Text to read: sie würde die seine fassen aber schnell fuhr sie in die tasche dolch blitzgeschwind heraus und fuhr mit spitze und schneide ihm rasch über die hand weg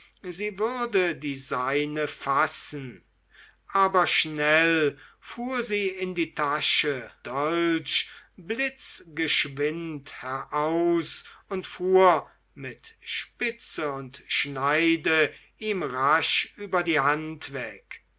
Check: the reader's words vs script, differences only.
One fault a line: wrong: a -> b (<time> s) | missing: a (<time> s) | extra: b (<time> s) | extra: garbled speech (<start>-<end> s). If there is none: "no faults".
no faults